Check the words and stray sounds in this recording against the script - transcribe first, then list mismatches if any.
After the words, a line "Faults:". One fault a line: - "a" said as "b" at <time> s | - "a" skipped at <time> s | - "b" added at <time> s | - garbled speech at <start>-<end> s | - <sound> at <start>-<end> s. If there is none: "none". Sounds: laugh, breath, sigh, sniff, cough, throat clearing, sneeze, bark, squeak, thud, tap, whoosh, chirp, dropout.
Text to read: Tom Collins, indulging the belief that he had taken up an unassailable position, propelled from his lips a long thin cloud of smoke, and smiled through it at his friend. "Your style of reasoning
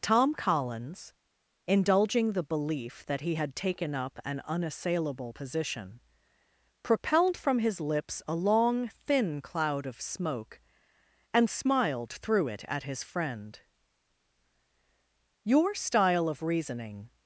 Tom Collins, indulging the belief that he had taken up an unassailable position, propelled from his lips a long thin cloud of smoke, and smiled through it at his friend. "Your style of reasoning
Faults:
none